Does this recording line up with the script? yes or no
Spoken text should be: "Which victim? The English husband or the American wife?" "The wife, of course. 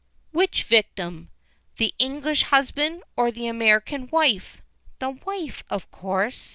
yes